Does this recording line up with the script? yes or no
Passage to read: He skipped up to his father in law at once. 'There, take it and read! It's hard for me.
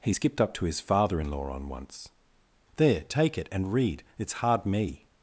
no